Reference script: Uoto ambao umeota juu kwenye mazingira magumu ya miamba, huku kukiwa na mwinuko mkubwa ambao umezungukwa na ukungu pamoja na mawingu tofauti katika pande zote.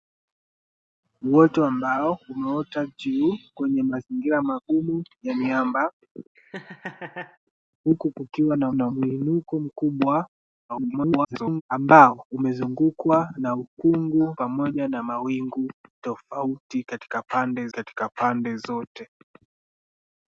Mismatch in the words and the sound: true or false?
true